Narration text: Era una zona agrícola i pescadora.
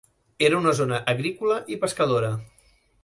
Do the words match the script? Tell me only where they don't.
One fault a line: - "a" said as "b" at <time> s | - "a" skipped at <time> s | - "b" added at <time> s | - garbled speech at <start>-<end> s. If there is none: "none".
none